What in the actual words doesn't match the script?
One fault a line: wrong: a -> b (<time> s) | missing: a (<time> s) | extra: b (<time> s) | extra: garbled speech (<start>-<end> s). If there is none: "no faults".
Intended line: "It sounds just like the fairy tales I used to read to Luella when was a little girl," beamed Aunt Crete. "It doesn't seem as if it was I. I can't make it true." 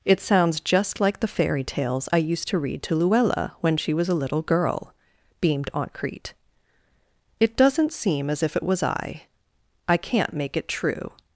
extra: she (3.8 s)